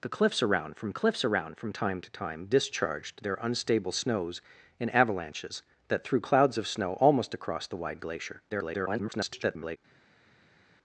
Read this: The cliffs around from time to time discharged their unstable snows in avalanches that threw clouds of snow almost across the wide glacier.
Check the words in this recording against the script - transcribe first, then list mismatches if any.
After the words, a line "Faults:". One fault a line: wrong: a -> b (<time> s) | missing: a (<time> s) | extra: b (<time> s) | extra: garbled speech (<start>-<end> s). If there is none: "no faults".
The cliffs around from cliffs around from time to time discharged their unstable snows in avalanches that threw clouds of snow almost across the wide glacier. [garbled]
Faults:
extra: cliffs around from (0.9 s)
extra: garbled speech (8.5-9.8 s)